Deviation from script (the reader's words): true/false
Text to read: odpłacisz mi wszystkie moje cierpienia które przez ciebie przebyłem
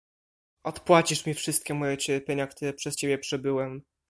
false